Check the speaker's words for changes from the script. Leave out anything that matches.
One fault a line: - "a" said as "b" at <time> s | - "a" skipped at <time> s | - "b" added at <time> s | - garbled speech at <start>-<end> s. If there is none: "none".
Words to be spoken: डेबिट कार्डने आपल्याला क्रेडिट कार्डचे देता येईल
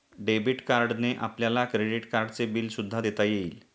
- "बिल सुद्धा" added at 2.5 s